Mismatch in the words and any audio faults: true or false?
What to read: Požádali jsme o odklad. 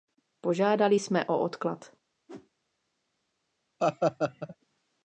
true